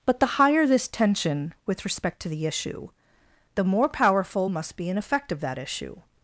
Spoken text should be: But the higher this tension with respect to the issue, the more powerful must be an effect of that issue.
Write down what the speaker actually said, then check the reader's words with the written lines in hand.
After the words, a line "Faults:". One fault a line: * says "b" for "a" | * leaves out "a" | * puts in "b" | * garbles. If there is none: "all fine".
But the higher this tension with respect to the issue, the more powerful must be an effect of that issue.
Faults:
all fine